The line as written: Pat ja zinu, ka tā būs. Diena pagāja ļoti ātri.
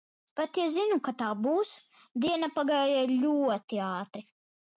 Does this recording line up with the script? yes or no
yes